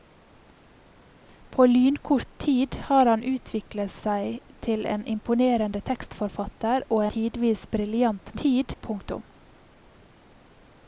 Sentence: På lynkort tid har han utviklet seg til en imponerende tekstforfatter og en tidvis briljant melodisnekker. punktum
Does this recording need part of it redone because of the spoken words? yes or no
yes